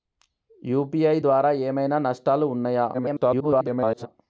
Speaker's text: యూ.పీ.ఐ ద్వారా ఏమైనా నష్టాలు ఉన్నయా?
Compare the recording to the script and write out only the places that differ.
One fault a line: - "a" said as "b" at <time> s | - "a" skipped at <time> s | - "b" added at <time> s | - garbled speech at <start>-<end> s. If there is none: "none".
- garbled speech at 2.9-4.1 s